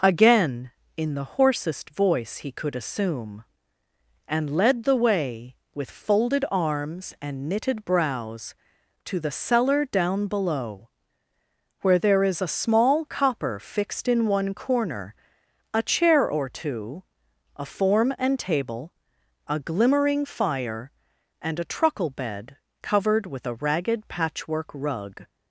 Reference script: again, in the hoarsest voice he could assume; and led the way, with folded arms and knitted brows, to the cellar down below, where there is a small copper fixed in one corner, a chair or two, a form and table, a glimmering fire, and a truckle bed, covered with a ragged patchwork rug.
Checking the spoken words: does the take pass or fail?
pass